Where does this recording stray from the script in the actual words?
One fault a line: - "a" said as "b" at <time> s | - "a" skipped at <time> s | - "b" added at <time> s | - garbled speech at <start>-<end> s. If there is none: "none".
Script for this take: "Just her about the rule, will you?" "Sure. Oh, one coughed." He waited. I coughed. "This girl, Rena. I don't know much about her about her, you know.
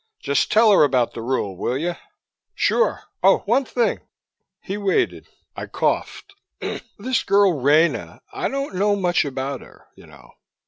- "tell" added at 0.5 s
- "coughed" said as "thing" at 3.6 s
- "about her" skipped at 9.9 s